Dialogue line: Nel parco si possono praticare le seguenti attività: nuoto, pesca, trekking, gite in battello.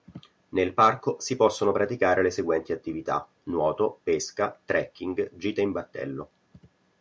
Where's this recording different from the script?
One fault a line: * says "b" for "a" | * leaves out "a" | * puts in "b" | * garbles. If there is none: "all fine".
all fine